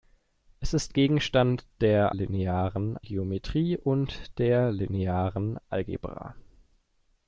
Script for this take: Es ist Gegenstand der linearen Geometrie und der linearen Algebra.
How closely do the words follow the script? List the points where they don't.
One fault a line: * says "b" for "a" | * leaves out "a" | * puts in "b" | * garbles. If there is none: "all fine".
all fine